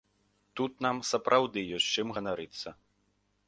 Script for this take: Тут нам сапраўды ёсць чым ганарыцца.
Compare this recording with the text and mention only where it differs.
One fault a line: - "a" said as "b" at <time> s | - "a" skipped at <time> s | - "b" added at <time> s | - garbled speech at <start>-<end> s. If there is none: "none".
none